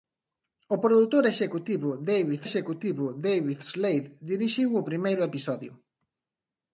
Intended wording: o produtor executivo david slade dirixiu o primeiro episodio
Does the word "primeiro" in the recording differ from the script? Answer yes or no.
no